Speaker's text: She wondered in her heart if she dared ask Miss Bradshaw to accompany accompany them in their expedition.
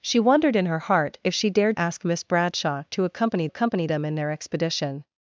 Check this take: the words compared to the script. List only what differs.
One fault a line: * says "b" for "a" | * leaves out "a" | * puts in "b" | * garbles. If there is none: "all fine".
all fine